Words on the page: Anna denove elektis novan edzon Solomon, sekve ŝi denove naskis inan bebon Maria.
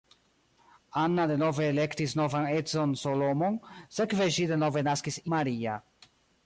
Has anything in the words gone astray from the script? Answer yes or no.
yes